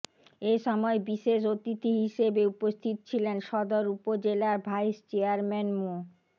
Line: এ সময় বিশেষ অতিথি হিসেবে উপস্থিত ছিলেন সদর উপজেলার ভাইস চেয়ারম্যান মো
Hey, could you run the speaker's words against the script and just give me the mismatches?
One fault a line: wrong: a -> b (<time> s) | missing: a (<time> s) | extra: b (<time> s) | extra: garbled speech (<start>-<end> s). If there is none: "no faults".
no faults